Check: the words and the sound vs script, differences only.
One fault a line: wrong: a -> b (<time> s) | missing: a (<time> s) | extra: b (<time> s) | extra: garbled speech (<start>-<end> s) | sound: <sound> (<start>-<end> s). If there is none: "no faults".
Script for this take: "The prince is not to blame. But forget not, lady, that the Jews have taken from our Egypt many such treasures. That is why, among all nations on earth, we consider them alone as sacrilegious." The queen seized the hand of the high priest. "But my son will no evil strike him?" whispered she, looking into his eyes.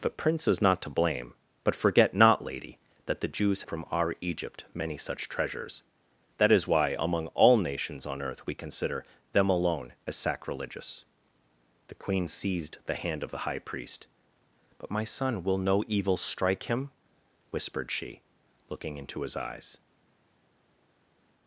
missing: have taken (3.6 s)